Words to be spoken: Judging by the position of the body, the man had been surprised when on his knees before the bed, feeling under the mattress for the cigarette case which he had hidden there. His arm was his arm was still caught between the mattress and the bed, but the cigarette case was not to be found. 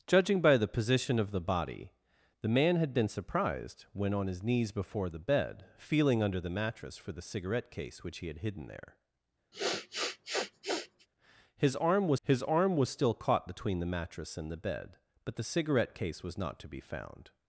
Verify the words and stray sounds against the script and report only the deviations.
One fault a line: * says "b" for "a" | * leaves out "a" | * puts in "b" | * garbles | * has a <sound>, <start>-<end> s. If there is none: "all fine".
* has a sniff, 9.5-11.1 s